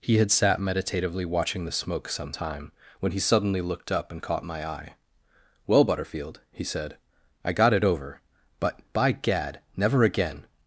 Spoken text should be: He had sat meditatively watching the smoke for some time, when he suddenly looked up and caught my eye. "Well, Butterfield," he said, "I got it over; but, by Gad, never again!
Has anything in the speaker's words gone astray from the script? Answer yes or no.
yes